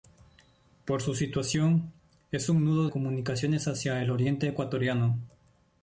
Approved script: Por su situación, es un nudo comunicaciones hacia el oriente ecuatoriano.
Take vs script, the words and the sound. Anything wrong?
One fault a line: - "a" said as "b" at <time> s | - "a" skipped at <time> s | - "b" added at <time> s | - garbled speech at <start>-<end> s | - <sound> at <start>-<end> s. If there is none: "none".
none